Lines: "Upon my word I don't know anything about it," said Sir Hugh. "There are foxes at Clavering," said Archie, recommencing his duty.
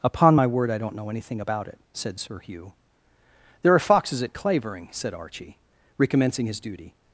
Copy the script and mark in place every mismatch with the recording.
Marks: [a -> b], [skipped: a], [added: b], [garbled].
"Upon my word I don't know anything about it," said Sir Hugh. "There are foxes at Clavering," said Archie, recommencing his duty.